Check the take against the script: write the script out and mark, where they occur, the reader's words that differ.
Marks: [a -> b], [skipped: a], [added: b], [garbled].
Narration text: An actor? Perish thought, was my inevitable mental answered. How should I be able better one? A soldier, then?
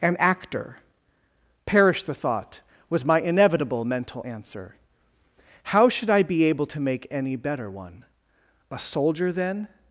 An actor? Perish [added: the] thought, was my inevitable mental [answered. -> answer] How should I be able [added: to make any] better one? A soldier, then?